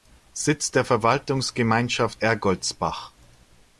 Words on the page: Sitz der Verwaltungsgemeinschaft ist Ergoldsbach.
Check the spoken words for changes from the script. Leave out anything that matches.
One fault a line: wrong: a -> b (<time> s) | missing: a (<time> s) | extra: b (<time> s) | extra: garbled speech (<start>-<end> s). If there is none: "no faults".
missing: ist (2.2 s)